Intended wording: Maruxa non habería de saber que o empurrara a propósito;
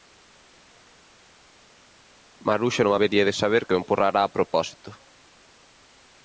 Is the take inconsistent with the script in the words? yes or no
no